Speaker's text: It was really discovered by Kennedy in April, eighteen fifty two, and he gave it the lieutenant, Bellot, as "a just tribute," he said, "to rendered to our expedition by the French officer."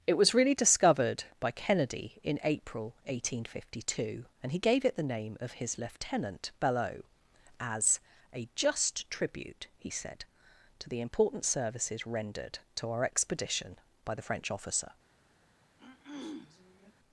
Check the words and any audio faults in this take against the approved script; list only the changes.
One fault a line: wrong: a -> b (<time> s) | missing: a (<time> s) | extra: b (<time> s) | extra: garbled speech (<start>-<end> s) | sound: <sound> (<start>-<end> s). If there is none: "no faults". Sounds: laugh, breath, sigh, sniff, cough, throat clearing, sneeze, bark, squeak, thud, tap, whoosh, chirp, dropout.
extra: name of his (5.0 s)
extra: the important services (10.9 s)
sound: throat clearing (15.8-16.9 s)